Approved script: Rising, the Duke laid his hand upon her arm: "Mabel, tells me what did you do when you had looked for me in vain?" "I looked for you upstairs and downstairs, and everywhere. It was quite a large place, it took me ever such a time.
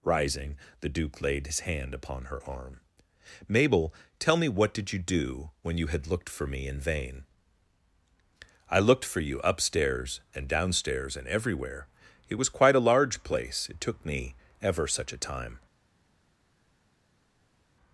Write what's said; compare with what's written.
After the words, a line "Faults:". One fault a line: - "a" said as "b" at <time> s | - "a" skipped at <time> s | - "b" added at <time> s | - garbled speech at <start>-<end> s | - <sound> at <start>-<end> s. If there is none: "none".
Rising, the Duke laid his hand upon her arm: "Mabel, tell me what did you do when you had looked for me in vain?" "I looked for you upstairs and downstairs, and everywhere. It was quite a large place, it took me ever such a time.
Faults:
- "tells" said as "tell" at 4.2 s